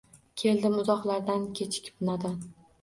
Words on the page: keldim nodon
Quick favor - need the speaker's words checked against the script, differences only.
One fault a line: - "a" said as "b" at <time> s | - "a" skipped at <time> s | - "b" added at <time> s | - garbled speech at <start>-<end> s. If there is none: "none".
- "uzoqlardan kechikib" added at 0.8 s